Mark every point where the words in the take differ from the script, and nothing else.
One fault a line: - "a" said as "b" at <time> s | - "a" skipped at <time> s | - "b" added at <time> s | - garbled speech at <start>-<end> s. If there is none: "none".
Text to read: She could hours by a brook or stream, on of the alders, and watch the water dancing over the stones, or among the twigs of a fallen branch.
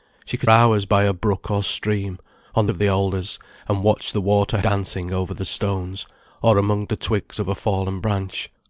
none